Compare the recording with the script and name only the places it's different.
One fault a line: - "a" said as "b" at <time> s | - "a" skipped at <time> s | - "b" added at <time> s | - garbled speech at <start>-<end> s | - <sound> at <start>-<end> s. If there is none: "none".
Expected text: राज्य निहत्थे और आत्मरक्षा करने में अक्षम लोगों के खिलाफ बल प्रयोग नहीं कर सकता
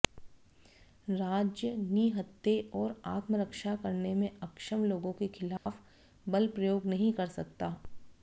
- dropout at 5.6-5.7 s